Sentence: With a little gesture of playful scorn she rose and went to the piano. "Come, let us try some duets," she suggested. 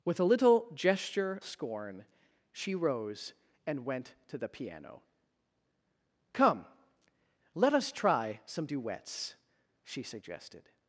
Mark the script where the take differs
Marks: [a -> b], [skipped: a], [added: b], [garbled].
With a little gesture [skipped: of playful] scorn she rose and went to the piano. "Come, let us try some duets," she suggested.